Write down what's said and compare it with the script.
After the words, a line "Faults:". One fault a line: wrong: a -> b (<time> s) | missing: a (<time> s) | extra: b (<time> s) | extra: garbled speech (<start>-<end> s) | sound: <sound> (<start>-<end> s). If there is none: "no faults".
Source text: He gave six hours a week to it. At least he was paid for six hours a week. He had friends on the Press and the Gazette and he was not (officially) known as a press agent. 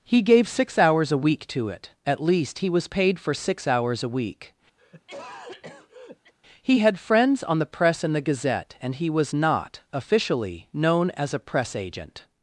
He gave six hours a week to it. At least he was paid for six hours a week. He had friends on the Press and the Gazette and he was not (officially) known as a press agent.
Faults:
sound: cough (4.8-6.3 s)